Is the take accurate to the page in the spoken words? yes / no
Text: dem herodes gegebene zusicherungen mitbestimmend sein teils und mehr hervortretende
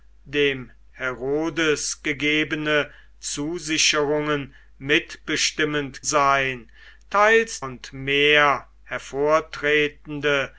yes